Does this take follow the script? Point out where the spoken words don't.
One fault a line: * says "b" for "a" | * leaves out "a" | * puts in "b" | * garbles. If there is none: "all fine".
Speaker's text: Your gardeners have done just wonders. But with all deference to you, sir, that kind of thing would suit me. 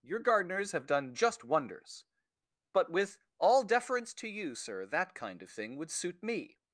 all fine